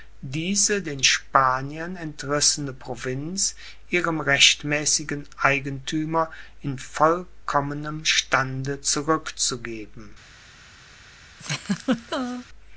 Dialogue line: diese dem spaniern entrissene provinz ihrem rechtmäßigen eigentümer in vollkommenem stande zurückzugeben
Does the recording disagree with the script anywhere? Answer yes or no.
yes